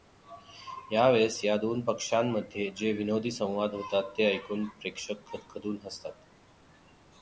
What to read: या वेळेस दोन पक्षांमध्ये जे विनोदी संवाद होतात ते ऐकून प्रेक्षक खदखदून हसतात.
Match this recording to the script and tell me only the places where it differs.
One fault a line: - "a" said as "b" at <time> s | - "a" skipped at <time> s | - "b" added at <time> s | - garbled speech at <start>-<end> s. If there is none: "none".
- "या" added at 1.4 s